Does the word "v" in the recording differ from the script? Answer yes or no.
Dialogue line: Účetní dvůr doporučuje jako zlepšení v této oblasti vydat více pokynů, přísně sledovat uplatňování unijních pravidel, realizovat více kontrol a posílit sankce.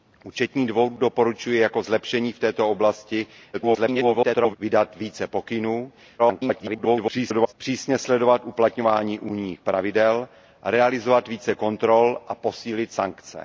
no